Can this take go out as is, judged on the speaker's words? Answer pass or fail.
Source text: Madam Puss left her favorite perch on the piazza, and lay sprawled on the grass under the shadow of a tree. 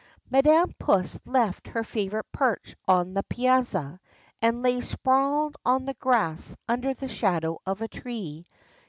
pass